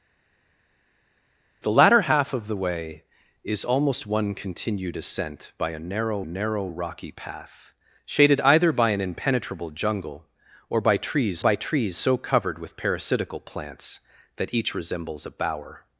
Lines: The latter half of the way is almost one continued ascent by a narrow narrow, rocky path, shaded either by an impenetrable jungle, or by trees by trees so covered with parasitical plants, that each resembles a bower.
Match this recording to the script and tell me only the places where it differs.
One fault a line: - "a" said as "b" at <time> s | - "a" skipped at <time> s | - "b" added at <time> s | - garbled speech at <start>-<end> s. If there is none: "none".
none